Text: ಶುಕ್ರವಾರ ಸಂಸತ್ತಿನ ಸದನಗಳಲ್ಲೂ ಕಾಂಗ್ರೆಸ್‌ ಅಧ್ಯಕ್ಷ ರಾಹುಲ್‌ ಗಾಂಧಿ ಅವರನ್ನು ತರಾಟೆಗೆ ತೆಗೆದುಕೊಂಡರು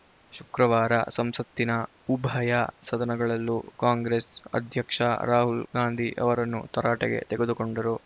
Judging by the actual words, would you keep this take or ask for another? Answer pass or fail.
fail